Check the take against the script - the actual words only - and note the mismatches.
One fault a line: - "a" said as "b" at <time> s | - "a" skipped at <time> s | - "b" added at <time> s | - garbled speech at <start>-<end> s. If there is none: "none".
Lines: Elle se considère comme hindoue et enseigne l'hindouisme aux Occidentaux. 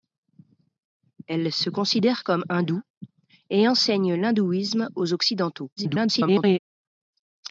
- garbled speech at 5.8-6.6 s